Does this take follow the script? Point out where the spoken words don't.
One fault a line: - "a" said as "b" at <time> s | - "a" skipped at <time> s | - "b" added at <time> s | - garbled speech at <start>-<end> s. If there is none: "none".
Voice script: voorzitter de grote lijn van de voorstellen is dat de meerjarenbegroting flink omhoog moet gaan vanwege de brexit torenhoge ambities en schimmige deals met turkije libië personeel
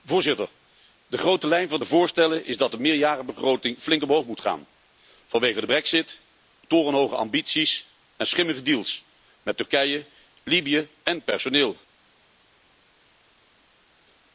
- "en" added at 11.0 s